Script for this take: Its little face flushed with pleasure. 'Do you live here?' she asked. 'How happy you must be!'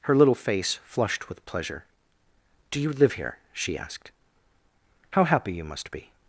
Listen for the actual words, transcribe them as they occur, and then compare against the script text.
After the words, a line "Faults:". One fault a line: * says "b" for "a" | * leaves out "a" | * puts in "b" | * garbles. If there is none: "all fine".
Her little face flushed with pleasure. 'Do you live here?' she asked. 'How happy you must be!'
Faults:
* says "Her" for "Its"